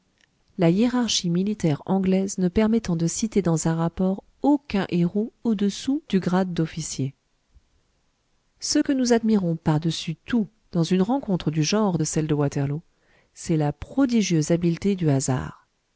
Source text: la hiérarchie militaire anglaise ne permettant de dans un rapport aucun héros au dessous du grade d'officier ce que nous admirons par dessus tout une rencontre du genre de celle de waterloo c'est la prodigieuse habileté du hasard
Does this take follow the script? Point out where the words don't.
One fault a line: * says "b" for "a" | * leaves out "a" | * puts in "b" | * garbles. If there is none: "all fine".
* puts in "citer"
* puts in "dans"